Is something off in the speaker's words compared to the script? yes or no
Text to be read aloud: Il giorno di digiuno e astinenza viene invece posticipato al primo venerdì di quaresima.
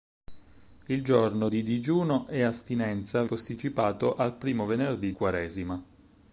yes